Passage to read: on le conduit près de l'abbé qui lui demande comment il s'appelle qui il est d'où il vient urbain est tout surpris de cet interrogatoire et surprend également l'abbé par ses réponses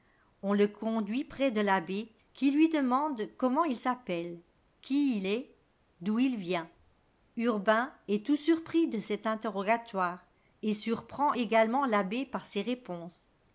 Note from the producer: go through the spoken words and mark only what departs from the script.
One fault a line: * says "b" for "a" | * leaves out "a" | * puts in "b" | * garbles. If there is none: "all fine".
all fine